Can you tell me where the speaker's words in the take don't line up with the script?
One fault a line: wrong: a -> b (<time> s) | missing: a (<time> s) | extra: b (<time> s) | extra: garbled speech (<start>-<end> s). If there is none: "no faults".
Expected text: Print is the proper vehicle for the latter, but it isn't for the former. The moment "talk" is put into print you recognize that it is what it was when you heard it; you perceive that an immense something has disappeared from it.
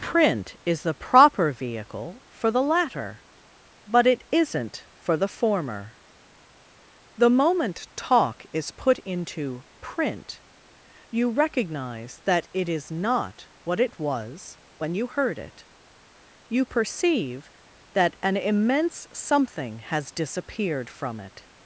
extra: not (12.9 s)